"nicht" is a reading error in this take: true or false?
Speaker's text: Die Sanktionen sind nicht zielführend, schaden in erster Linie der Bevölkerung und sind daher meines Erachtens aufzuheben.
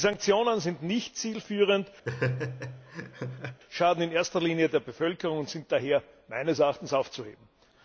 false